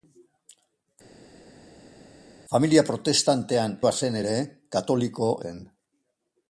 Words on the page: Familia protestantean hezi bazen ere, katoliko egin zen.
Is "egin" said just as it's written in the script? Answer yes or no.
no